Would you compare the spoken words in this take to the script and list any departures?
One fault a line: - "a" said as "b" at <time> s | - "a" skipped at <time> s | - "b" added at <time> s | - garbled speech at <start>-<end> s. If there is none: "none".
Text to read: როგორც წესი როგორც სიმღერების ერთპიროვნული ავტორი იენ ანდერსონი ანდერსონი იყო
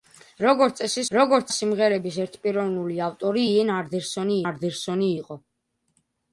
none